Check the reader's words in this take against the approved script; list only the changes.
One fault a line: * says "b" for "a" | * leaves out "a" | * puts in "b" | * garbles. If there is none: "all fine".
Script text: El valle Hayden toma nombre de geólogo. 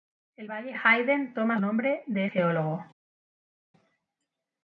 all fine